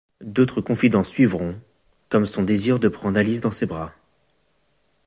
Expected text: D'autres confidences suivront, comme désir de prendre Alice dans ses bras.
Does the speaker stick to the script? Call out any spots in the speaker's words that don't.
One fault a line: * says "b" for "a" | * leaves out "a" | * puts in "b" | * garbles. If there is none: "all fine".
* puts in "son"